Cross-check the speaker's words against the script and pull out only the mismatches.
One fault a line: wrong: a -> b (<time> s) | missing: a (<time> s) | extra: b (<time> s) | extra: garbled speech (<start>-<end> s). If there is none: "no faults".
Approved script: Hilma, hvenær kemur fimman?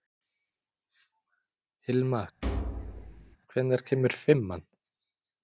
no faults